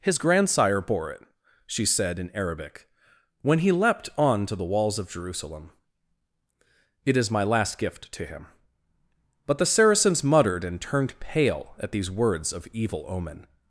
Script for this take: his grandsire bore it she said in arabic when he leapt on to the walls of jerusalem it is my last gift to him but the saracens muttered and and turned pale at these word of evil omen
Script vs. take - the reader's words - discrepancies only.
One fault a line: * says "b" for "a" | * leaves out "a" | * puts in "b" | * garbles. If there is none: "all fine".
* leaves out "and"
* says "words" for "word"